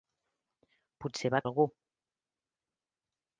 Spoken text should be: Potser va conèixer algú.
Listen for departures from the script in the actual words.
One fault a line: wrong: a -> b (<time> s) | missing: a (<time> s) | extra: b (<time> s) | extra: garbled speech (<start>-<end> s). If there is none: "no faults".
missing: conèixer (1.4 s)